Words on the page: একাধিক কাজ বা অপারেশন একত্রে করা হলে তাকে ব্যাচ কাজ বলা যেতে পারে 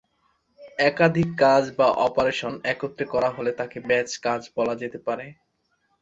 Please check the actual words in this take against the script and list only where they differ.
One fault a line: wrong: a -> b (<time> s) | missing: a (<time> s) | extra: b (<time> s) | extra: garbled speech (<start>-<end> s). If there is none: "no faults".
no faults